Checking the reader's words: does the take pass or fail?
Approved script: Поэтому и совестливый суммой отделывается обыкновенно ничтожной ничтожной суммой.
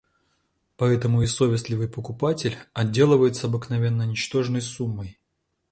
fail